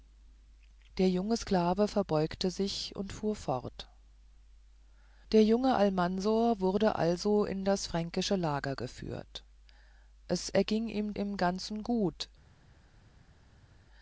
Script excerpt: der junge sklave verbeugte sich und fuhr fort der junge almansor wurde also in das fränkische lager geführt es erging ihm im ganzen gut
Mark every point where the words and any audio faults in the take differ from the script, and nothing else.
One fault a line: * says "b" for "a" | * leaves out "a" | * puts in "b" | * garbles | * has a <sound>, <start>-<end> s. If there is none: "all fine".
all fine